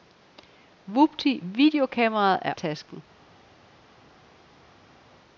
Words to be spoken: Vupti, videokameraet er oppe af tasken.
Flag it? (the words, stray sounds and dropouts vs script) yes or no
yes